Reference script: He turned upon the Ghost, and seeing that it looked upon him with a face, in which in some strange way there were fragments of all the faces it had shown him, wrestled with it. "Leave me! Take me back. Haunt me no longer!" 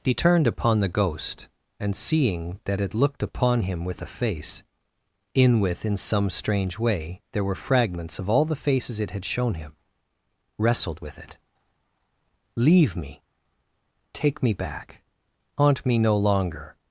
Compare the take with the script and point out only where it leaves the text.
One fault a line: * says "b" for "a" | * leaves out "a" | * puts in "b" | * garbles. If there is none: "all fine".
* says "with" for "which"